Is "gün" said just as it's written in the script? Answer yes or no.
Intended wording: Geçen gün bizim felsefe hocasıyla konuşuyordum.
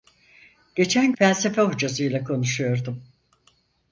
no